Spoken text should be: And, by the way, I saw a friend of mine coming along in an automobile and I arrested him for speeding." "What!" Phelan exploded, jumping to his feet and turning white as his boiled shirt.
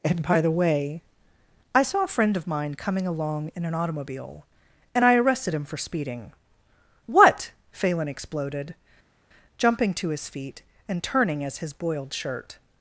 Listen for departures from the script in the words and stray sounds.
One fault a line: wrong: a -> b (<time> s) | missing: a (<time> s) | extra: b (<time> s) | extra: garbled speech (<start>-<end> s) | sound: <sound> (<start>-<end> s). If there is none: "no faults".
missing: white (11.4 s)